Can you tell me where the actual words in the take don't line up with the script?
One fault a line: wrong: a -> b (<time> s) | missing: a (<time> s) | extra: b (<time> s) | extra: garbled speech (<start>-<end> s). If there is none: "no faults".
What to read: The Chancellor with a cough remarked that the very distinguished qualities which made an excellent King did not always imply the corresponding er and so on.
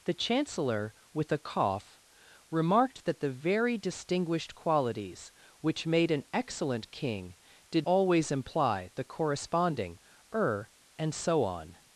missing: not (7.9 s)